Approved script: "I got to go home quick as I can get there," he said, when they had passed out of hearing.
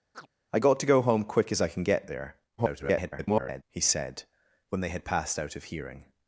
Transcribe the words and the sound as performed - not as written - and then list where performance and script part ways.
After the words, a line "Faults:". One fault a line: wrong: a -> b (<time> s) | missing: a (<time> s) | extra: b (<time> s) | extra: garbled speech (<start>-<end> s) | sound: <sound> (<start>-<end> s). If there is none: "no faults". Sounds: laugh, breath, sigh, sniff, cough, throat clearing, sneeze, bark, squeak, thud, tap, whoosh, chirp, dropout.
"I got to go home quick as I can get there," [garbled] he said, when they had passed out of hearing.
Faults:
sound: chirp (0.1-0.3 s)
extra: garbled speech (2.6-3.6 s)